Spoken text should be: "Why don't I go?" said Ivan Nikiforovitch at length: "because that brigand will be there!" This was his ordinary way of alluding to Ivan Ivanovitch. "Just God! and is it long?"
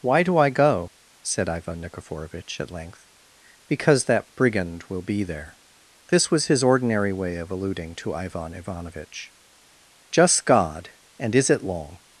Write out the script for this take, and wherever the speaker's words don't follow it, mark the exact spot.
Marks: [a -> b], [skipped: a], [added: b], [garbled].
"Why [don't -> do] I go?" said Ivan Nikiforovitch at length: "because that brigand will be there!" This was his ordinary way of alluding to Ivan Ivanovitch. "Just God! and is it long?"